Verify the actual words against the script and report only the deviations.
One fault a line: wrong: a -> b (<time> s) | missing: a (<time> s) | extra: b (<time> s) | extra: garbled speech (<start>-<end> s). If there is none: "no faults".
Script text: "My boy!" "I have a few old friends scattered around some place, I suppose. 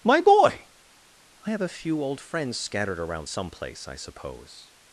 no faults